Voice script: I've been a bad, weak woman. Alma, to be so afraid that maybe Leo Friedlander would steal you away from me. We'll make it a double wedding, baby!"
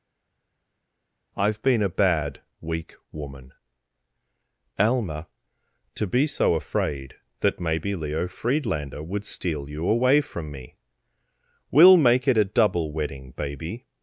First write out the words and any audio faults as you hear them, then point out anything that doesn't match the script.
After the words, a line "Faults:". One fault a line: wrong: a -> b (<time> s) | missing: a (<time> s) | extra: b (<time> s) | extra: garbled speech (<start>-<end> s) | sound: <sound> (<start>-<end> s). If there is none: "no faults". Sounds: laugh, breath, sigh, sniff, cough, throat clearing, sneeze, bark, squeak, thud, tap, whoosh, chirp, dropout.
I've been a bad, weak woman. Alma, to be so afraid that maybe Leo Friedlander would steal you away from me. We'll make it a double wedding, baby!"
Faults:
no faults